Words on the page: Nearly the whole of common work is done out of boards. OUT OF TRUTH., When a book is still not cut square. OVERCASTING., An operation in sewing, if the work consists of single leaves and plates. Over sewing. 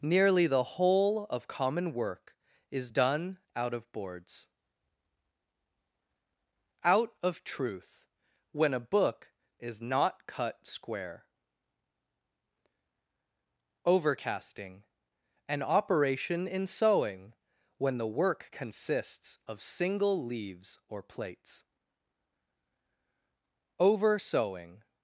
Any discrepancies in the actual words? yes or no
yes